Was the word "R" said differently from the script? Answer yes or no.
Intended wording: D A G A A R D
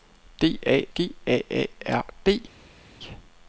no